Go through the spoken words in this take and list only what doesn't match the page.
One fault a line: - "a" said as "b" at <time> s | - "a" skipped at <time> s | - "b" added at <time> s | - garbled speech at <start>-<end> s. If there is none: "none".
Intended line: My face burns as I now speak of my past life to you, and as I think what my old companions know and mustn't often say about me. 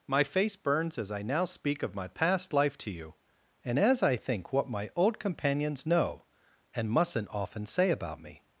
none